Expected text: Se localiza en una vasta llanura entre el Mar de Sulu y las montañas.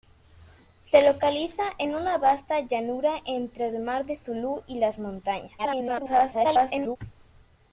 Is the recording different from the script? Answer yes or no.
yes